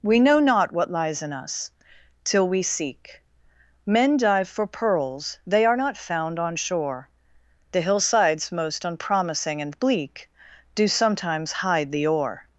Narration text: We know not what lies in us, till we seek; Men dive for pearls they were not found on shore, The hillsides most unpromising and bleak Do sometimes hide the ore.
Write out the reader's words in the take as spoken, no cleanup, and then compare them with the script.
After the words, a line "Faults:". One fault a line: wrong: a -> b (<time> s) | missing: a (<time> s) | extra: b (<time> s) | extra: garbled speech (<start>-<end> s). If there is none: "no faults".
We know not what lies in us, till we seek; Men dive for pearls they are not found on shore, The hillsides most unpromising and bleak Do sometimes hide the ore.
Faults:
wrong: were -> are (5.6 s)